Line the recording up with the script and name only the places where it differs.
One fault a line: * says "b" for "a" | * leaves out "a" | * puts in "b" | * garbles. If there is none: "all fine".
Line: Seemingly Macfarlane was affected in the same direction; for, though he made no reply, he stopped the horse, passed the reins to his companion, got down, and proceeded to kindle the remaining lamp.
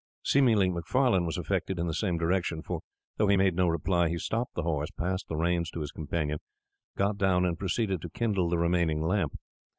all fine